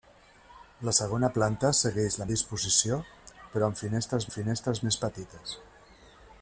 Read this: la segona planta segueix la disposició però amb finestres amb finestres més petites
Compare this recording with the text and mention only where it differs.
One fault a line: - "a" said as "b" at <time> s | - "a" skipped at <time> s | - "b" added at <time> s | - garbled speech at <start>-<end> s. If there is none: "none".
none